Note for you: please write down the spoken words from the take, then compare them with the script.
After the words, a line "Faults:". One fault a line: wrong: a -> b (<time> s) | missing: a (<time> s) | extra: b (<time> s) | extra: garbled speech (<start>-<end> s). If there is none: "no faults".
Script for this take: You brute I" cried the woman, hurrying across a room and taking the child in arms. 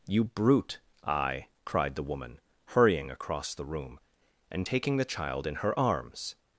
You brute I" cried the woman, hurrying across the room and taking the child in her arms.
Faults:
wrong: a -> the (3.5 s)
extra: her (5.6 s)